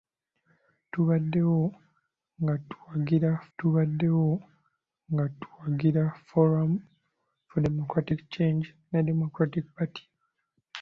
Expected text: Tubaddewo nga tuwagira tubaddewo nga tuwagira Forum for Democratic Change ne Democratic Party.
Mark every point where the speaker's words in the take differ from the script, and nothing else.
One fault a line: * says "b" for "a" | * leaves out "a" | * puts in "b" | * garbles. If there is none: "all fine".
all fine